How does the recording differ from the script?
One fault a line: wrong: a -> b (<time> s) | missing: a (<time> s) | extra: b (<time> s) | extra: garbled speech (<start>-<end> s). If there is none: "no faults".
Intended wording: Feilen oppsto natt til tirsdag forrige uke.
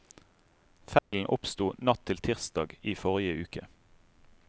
extra: i (2.8 s)